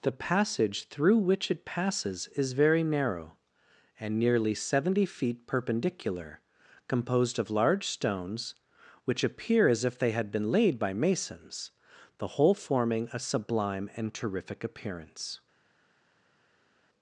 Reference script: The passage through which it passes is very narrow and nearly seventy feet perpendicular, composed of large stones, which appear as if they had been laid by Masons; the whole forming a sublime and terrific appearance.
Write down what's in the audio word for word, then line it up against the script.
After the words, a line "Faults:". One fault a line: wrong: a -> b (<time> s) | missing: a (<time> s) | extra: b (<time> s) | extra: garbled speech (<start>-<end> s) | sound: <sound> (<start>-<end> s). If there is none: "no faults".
The passage through which it passes is very narrow and nearly seventy feet perpendicular, composed of large stones, which appear as if they had been laid by Masons; the whole forming a sublime and terrific appearance.
Faults:
no faults